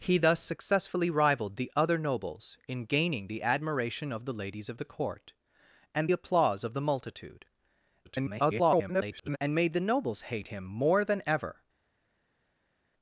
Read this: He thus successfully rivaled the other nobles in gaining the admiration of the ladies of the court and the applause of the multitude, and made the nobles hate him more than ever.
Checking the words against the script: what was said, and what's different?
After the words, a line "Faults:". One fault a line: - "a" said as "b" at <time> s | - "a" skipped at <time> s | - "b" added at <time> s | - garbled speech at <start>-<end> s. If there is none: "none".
He thus successfully rivaled the other nobles in gaining the admiration of the ladies of the court and applause of the multitude, [garbled] and made the nobles hate him more than ever.
Faults:
- "the" skipped at 6.1 s
- garbled speech at 8.0-9.4 s